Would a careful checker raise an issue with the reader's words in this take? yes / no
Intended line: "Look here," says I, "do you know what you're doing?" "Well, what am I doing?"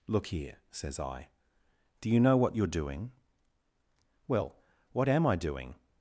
no